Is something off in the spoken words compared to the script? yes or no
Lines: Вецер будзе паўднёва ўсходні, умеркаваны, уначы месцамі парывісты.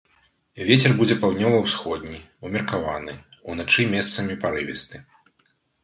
no